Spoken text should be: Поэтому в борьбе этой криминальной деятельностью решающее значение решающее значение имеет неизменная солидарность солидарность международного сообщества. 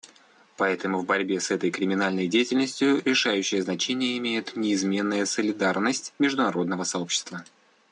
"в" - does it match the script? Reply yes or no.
yes